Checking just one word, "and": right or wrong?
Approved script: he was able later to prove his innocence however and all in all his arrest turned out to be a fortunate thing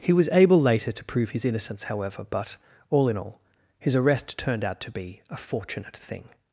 wrong